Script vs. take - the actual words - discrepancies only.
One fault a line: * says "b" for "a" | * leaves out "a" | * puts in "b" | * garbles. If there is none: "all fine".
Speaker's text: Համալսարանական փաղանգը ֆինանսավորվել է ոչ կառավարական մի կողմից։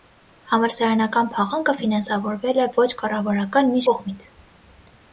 all fine